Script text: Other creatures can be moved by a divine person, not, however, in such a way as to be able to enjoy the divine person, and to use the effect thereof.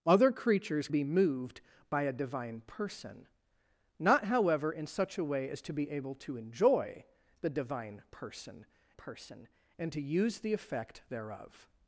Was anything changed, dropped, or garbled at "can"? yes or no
yes